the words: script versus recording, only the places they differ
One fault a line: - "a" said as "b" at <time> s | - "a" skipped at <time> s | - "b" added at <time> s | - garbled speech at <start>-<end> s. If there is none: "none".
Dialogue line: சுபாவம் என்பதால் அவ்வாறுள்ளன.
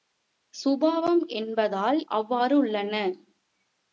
none